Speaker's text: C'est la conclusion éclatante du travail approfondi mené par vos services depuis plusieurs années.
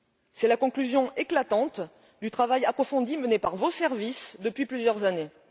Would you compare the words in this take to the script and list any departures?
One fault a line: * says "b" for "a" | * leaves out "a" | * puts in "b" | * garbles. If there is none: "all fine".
all fine